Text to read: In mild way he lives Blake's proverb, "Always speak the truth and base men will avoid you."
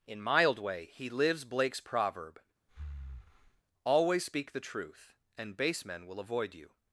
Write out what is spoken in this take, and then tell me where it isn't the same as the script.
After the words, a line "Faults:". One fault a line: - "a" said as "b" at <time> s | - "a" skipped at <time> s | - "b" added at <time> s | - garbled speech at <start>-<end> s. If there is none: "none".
In mild way he lives Blake's proverb, "Always speak the truth and base men will avoid you."
Faults:
none